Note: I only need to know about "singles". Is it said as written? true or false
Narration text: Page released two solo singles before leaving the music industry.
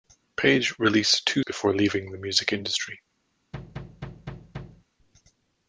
false